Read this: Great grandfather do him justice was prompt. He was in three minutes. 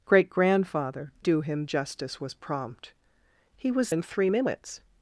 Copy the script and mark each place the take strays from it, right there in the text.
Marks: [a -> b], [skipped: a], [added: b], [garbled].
Great grandfather do him justice was prompt. He was in three minutes.